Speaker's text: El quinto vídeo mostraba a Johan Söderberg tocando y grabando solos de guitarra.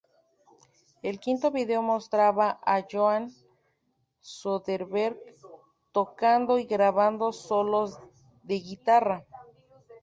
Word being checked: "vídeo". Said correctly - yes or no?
yes